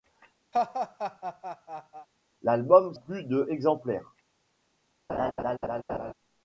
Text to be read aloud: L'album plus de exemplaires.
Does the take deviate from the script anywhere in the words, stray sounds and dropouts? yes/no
yes